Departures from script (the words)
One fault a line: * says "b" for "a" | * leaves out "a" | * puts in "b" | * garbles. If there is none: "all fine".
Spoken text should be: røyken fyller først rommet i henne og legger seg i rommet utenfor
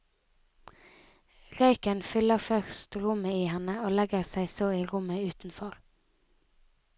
* puts in "så"